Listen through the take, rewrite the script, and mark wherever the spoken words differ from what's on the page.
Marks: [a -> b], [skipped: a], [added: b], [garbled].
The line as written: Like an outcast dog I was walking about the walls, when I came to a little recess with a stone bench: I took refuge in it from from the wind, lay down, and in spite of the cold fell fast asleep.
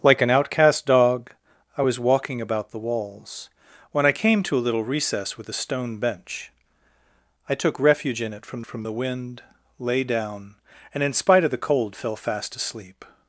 Like an outcast dog I was walking about the walls, when I came to a little recess with a stone bench: I took refuge in it from from the wind, lay down, and in spite of the cold fell fast asleep.